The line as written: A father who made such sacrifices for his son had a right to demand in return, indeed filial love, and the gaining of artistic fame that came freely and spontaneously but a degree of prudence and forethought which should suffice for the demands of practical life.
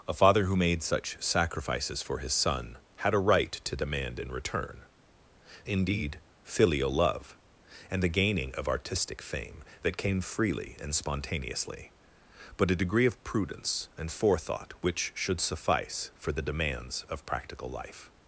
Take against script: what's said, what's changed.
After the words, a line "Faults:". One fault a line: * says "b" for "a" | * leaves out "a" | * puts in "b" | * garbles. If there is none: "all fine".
A father who made such sacrifices for his son had a right to demand in return, indeed filial love, and the gaining of artistic fame that came freely and spontaneously but a degree of prudence and forethought which should suffice for the demands of practical life.
Faults:
all fine